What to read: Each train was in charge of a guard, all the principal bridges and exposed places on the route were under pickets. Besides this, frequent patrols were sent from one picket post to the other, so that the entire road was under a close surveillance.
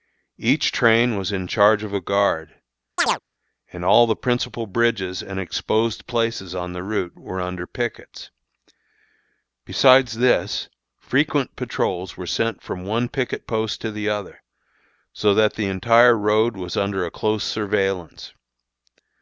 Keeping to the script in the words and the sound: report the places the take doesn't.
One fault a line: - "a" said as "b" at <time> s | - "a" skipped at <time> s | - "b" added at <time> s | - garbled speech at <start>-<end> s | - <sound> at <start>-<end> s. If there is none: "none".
- chirp at 3.0-3.2 s
- "and" added at 3.7 s